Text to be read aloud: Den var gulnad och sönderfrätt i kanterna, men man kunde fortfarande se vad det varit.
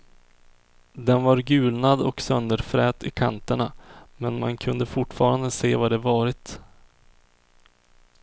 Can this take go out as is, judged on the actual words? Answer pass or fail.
pass